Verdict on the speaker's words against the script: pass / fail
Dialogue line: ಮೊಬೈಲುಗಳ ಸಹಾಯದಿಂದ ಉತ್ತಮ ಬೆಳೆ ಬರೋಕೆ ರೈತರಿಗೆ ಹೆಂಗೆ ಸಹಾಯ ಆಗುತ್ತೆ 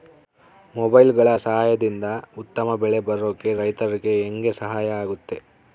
pass